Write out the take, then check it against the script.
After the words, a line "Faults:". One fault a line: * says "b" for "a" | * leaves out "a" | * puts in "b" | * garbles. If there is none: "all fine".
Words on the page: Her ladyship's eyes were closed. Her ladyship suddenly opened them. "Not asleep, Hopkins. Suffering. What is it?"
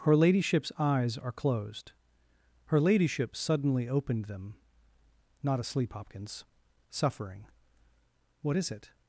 Her ladyship's eyes are closed. Her ladyship suddenly opened them. "Not asleep, Hopkins. Suffering. What is it?"
Faults:
* says "are" for "were"